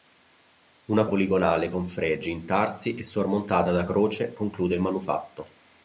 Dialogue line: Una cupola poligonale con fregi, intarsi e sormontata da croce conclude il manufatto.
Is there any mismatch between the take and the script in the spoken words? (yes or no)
yes